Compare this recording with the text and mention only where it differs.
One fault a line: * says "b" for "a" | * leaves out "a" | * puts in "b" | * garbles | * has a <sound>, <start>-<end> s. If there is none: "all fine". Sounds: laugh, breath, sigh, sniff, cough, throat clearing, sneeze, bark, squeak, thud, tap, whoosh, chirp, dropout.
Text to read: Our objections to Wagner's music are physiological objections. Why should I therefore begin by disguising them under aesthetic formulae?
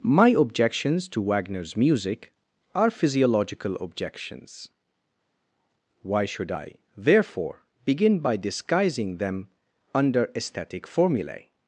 * says "My" for "Our"